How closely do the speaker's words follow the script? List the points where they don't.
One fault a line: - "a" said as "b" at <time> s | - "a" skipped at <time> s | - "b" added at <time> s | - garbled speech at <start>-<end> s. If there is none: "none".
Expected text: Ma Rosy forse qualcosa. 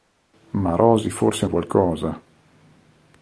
none